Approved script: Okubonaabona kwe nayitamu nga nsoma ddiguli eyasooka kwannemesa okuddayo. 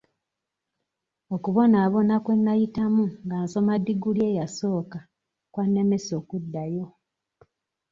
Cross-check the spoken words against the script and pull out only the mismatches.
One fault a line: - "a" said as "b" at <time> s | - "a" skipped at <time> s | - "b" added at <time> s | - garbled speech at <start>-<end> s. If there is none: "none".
none